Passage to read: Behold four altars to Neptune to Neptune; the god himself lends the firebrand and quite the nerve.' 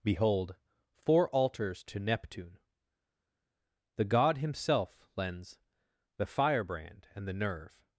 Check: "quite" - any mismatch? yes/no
yes